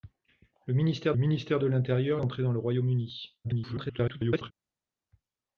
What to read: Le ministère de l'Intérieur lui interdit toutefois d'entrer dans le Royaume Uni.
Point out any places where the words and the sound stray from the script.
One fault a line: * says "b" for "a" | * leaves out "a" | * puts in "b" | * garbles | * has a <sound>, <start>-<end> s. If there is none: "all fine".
* puts in "ministère"
* leaves out "lui interdit toutefois"
* garbles